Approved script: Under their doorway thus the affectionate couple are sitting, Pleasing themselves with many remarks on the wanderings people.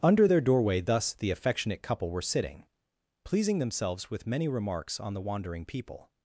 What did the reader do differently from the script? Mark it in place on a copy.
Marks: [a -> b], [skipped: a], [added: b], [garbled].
Under their doorway thus the affectionate couple [are -> were] sitting, Pleasing themselves with many remarks on the [wanderings -> wandering] people.